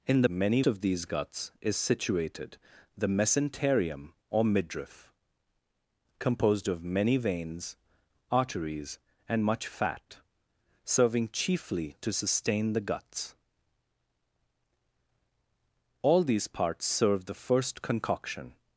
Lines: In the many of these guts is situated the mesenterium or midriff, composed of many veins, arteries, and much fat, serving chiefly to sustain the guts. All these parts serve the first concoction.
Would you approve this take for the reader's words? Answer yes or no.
yes